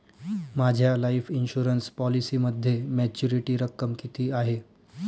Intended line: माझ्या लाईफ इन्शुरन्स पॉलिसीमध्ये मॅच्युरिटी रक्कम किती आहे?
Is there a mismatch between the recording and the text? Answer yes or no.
no